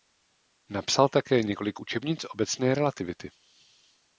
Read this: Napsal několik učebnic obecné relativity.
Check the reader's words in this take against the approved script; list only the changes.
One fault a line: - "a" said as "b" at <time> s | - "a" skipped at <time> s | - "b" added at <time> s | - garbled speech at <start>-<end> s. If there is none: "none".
- "také" added at 1.1 s